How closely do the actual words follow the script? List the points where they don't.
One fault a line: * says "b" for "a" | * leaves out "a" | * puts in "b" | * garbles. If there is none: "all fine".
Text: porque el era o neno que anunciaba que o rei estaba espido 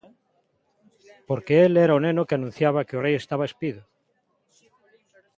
all fine